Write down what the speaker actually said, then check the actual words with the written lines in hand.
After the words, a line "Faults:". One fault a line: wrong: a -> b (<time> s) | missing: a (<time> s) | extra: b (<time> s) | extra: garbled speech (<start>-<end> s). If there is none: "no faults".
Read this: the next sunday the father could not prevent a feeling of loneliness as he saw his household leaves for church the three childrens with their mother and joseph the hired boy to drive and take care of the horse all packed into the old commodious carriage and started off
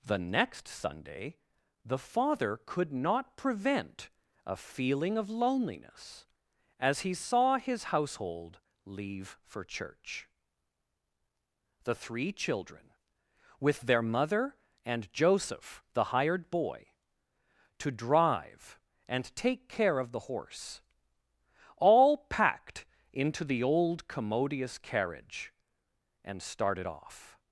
the next sunday the father could not prevent a feeling of loneliness as he saw his household leave for church the three children with their mother and joseph the hired boy to drive and take care of the horse all packed into the old commodious carriage and started off
Faults:
wrong: leaves -> leave (8.8 s)
wrong: childrens -> children (12.3 s)